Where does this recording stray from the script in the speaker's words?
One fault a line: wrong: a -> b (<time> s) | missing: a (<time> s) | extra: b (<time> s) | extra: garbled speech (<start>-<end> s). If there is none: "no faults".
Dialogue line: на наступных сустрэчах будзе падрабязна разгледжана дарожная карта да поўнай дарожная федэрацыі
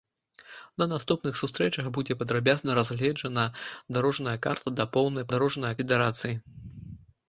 no faults